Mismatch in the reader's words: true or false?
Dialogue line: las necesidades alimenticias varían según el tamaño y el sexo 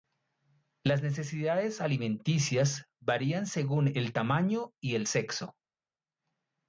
false